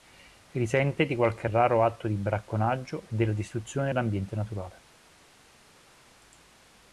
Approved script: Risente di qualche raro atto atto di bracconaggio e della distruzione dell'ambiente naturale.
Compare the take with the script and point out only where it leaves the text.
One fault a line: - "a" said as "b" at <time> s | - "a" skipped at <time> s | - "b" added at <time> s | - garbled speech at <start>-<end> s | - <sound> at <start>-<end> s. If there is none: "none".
- "atto" skipped at 2.1 s